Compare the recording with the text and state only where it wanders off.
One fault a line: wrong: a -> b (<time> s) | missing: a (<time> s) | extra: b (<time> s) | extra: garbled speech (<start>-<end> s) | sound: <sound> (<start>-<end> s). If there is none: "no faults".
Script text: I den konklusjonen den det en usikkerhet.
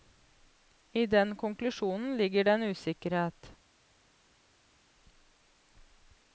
wrong: den -> ligger (2.2 s)